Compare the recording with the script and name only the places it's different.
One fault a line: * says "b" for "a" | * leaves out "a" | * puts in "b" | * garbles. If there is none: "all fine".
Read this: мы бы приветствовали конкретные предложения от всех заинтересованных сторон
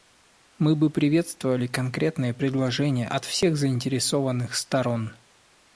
all fine